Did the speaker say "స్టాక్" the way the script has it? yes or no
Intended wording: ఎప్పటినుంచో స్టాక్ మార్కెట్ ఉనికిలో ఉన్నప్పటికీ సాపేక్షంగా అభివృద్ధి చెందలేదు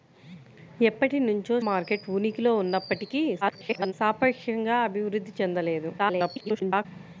no